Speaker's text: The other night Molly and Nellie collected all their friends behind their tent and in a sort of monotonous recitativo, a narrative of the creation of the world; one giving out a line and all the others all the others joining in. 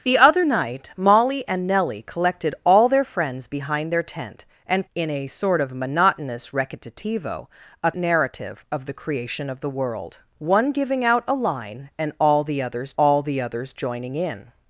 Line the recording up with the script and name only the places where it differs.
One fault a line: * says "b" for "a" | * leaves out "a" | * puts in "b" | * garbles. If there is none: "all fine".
all fine